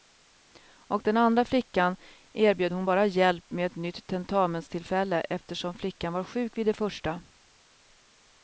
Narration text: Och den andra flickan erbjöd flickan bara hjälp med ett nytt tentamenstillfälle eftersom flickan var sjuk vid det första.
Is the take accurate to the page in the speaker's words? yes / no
no